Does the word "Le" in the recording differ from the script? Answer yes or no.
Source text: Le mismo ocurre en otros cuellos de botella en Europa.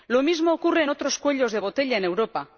yes